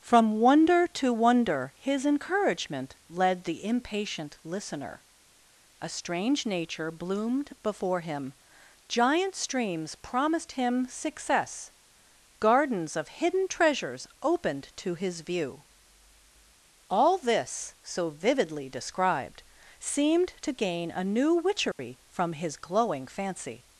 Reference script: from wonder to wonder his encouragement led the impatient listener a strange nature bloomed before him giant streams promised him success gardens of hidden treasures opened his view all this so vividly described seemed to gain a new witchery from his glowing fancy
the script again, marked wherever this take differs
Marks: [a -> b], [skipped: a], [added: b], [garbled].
from wonder to wonder his encouragement led the impatient listener a strange nature bloomed before him giant streams promised him success gardens of hidden treasures opened [added: to] his view all this so vividly described seemed to gain a new witchery from his glowing fancy